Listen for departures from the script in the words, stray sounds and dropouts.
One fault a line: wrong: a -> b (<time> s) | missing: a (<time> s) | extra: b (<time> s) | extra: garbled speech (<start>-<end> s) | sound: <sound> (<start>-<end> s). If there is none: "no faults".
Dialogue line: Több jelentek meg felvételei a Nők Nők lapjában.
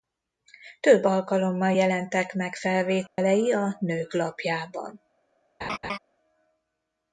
extra: alkalommal (1.0 s)
sound: dropout (3.1-3.2 s)
missing: Nők (4.1 s)
sound: laugh (5.6-6.0 s)